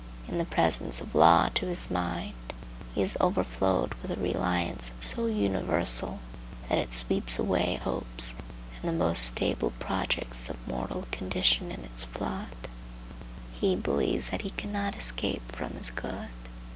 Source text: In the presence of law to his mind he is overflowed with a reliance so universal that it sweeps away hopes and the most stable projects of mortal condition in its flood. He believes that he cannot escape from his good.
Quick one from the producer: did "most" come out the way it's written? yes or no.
yes